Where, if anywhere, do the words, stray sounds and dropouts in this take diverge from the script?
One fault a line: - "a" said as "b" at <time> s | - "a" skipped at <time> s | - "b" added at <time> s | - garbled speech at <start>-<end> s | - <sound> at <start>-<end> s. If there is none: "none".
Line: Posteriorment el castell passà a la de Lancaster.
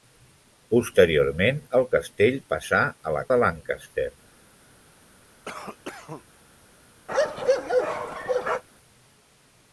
- cough at 5.4-6.2 s
- bark at 7.1-8.6 s